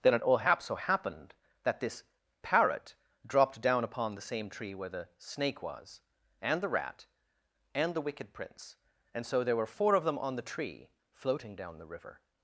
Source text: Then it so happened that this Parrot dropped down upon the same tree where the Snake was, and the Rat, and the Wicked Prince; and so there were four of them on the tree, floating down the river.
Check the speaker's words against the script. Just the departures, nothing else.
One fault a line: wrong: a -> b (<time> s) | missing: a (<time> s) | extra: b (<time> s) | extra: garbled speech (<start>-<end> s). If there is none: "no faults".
extra: all hap (0.2 s)